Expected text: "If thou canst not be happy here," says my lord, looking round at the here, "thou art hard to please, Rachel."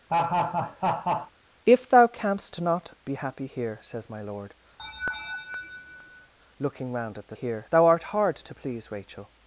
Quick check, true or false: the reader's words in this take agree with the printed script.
true